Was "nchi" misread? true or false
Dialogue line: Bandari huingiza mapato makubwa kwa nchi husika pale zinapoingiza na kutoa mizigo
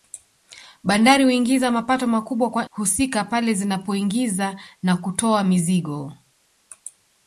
true